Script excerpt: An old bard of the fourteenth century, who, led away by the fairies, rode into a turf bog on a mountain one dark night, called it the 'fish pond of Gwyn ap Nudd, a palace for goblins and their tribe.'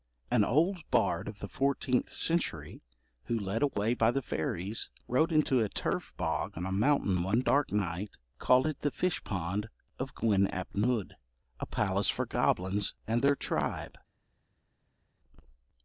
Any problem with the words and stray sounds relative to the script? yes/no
no